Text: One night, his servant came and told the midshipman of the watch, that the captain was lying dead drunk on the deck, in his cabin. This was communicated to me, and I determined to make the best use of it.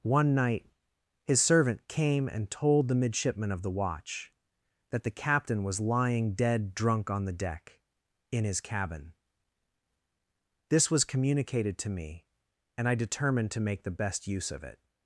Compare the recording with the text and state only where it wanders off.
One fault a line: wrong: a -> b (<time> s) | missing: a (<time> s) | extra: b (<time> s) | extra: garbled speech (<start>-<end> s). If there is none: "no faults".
no faults